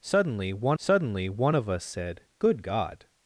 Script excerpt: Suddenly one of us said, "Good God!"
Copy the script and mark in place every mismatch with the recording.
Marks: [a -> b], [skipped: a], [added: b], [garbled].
Suddenly one [added: suddenly one] of us said, "Good God!"